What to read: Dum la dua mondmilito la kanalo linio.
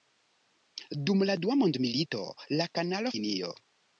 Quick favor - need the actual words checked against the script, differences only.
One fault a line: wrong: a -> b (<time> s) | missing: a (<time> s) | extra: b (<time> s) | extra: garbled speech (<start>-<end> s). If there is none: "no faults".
no faults